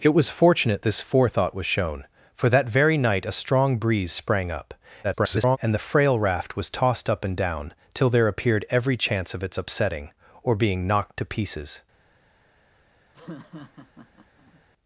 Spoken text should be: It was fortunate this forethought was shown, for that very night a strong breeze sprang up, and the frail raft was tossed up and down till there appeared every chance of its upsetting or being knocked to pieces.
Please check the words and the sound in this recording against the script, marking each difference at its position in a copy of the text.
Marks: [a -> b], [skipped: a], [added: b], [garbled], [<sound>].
It was fortunate this forethought was shown, for that very night a strong breeze sprang up, [garbled] and the frail raft was tossed up and down till there appeared every chance of its upsetting or being knocked to pieces. [laugh]